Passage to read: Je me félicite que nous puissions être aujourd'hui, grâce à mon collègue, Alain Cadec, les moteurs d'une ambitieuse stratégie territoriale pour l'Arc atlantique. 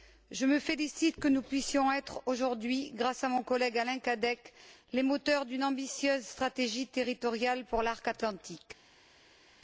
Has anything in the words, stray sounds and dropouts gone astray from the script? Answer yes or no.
no